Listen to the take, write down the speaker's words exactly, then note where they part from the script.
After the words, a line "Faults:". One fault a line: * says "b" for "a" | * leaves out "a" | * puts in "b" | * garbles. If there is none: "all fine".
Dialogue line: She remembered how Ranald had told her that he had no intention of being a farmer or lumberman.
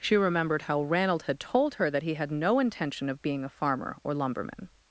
She remembered how Ranald had told her that he had no intention of being a farmer or lumberman.
Faults:
all fine